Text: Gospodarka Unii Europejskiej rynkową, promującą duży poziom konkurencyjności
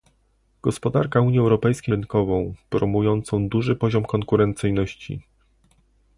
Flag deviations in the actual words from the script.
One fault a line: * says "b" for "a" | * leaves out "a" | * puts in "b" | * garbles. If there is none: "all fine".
all fine